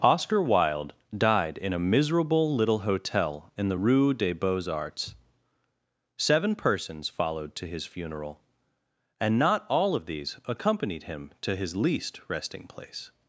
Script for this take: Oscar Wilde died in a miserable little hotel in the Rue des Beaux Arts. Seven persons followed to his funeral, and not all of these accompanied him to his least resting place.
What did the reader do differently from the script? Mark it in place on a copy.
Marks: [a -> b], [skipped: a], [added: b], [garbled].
Oscar Wilde died in a miserable little hotel in the Rue des Beaux Arts. Seven persons followed to his funeral, and not all of these accompanied him to his least resting place.